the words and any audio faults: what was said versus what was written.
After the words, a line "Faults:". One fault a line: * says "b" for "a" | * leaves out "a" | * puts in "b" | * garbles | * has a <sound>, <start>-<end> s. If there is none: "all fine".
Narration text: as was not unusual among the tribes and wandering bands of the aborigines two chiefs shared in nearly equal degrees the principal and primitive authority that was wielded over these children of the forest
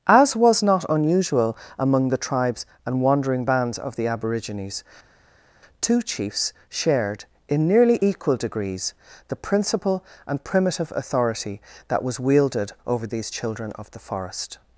as was not unusual among the tribes and wandering bands of the aborigines two chiefs shared in nearly equal degrees the principal and primitive authority that was wielded over these children of the forest
Faults:
all fine